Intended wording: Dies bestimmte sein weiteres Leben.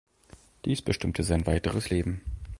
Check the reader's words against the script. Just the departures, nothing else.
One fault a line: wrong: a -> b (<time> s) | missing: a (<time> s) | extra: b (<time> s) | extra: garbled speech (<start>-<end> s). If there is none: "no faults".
no faults